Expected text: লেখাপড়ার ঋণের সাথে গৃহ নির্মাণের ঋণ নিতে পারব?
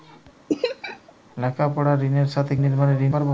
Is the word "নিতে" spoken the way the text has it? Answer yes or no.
no